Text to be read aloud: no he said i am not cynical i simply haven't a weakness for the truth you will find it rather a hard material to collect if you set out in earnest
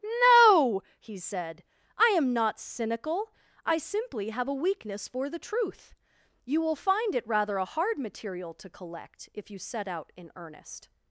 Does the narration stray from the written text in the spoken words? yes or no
yes